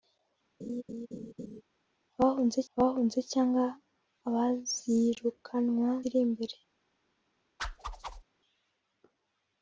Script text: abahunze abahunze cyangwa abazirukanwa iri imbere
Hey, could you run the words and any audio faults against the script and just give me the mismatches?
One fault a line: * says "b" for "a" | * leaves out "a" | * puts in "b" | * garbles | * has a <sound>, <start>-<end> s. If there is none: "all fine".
* has a laugh, 0.6-1.6 s
* has a whoosh, 7.6-8.2 s